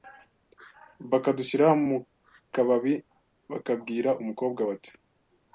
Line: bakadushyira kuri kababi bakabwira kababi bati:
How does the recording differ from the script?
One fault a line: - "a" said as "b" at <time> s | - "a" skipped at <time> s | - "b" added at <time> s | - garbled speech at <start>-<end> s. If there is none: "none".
- "kuri" said as "mu" at 1.9 s
- "kababi" said as "umukobwa" at 4.2 s